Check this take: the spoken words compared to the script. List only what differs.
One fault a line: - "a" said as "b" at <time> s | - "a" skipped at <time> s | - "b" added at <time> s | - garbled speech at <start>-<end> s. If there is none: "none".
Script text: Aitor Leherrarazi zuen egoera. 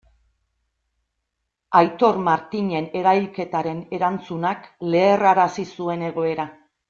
- "Martinen erailketaren erantzunak" added at 2.3 s